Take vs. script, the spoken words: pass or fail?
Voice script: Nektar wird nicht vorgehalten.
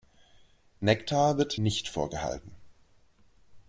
pass